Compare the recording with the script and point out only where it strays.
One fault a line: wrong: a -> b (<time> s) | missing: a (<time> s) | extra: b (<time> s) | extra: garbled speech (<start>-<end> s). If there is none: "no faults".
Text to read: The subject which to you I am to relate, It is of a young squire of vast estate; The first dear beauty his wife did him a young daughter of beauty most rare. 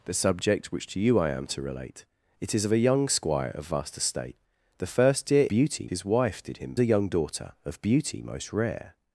no faults